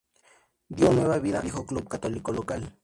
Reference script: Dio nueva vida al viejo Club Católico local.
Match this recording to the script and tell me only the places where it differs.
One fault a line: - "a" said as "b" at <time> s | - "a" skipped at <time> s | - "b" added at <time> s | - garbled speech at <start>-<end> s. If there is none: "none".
- "al" skipped at 1.4 s